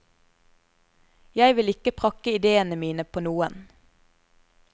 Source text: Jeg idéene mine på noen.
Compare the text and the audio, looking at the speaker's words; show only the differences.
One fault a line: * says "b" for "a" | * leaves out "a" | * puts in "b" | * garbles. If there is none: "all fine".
* puts in "vil ikke prakke"